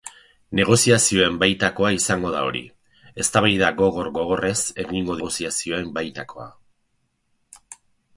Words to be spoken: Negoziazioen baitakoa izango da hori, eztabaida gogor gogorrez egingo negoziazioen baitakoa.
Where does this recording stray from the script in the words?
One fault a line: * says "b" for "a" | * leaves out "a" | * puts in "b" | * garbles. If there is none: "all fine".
all fine